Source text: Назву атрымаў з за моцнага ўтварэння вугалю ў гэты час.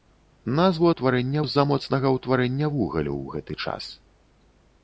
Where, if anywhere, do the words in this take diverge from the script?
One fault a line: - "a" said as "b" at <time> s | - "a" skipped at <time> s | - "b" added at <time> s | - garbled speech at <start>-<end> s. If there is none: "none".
- "атрымаў" said as "ўтварэння" at 0.9 s